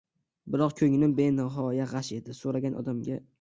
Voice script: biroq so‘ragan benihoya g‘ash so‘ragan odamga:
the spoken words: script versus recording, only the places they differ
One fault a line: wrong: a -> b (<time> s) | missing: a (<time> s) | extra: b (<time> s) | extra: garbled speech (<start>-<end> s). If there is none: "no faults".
wrong: so‘ragan -> ko‘nglim (0.8 s)
extra: edi (2.2 s)